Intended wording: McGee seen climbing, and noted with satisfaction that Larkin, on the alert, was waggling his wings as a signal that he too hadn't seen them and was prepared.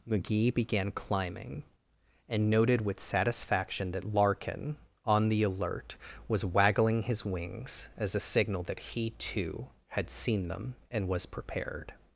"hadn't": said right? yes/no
no